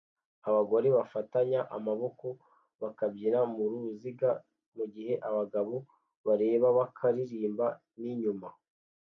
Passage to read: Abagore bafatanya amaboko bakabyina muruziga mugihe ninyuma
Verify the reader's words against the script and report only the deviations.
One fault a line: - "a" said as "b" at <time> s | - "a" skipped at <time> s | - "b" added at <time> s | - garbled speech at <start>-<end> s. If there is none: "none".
- "abagabo bareba bakaririmba" added at 5.3 s